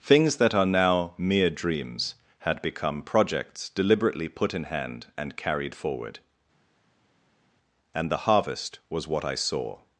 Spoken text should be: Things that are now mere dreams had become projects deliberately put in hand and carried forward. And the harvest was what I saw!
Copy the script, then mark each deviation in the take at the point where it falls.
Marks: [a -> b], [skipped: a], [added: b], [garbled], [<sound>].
Things that are now mere dreams had become projects deliberately put in hand and carried forward. And the harvest was what I saw!